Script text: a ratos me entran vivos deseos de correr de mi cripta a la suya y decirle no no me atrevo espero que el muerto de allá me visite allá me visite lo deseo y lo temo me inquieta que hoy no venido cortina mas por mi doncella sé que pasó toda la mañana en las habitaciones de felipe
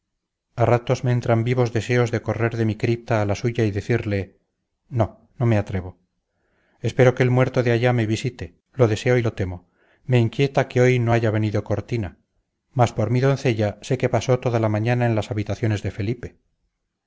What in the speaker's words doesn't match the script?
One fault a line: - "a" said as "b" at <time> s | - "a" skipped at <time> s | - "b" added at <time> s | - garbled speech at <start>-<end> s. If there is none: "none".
- "allá me visite" skipped at 8.6 s
- "haya" added at 11.1 s